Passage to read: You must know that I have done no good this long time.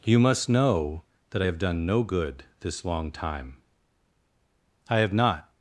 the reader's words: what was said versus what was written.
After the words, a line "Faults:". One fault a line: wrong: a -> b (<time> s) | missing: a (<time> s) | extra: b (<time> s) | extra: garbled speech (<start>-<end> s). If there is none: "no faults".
You must know that I have done no good this long time. I have not
Faults:
extra: I have not (4.9 s)